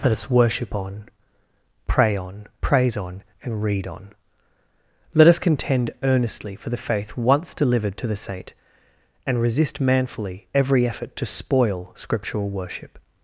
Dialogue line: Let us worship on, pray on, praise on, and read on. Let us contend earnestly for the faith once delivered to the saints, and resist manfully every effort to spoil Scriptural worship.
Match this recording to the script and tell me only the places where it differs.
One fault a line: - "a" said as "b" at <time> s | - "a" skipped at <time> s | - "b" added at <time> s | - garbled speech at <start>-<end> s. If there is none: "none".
- "saints" said as "saint" at 8.2 s